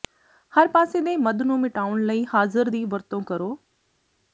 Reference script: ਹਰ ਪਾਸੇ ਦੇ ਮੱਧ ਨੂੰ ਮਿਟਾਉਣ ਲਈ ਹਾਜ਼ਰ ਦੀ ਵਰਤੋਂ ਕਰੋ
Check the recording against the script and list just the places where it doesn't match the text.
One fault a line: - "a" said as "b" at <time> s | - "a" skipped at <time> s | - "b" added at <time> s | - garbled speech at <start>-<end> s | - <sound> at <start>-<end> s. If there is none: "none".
none